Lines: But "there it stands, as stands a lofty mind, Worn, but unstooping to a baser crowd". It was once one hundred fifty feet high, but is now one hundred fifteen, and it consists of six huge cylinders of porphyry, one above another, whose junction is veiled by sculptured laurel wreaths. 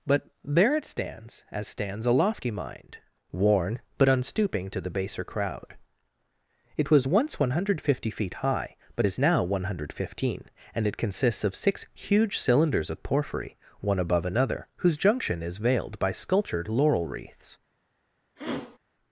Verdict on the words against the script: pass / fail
fail